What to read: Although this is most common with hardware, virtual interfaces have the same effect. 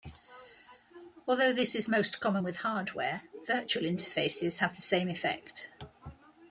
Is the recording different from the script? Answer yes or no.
no